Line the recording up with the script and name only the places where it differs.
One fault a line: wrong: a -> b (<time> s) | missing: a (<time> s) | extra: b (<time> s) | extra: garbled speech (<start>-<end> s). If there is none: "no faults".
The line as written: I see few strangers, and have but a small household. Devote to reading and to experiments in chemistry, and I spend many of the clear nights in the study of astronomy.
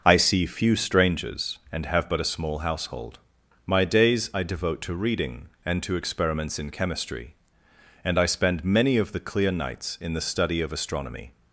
extra: My days I (3.7 s)